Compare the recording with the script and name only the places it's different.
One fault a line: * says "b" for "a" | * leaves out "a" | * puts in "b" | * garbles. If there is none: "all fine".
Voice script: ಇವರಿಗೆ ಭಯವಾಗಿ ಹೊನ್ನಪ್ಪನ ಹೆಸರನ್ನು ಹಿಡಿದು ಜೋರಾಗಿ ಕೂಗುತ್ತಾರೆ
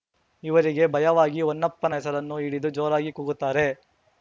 all fine